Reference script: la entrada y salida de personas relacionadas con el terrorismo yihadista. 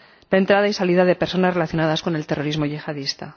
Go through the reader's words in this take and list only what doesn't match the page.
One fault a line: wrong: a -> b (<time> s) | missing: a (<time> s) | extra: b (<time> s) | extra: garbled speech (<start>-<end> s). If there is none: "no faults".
no faults